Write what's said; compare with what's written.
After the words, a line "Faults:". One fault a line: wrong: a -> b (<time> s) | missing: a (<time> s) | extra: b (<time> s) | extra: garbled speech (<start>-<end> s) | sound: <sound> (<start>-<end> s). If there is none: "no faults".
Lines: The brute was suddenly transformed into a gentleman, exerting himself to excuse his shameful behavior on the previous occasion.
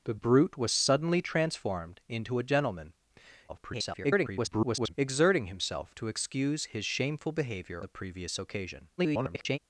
The brute was suddenly transformed into a gentleman, [garbled] exerting himself to excuse his shameful behavior the previous occasion. [garbled]
Faults:
extra: garbled speech (3.5-4.9 s)
missing: on (7.8 s)
extra: garbled speech (9.0-9.6 s)